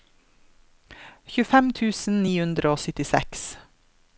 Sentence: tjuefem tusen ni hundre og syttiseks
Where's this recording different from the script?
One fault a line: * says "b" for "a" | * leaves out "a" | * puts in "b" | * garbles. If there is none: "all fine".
all fine